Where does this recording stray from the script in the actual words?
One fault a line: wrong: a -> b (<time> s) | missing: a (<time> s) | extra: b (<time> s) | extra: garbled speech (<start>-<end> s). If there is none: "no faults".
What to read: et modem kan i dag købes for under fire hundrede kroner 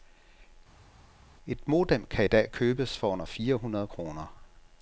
no faults